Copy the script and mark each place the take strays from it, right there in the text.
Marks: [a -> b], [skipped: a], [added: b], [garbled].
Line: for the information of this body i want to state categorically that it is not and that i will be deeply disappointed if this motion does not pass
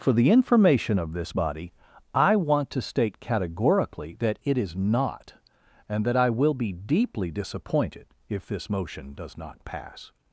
for the information of this body i want to state categorically that it is not and that i will be deeply disappointed if this motion does not pass